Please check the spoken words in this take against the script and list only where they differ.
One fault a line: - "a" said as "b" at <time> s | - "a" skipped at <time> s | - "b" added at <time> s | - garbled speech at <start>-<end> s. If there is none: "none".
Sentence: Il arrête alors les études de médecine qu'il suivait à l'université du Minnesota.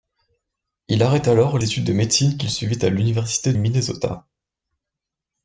- "les" skipped at 1.6 s
- "du" skipped at 3.5 s